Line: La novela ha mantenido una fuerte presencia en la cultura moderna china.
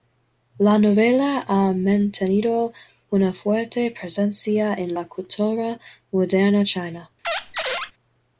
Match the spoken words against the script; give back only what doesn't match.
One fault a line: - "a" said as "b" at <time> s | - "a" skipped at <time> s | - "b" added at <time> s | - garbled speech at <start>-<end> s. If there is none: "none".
none